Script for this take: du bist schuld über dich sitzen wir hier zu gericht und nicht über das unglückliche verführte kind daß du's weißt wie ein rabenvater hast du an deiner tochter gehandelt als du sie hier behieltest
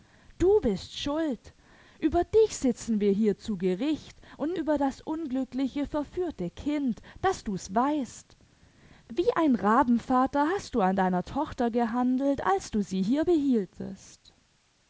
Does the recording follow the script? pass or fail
fail